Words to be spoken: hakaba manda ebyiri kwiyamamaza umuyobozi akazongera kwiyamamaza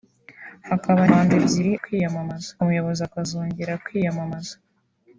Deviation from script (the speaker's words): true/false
false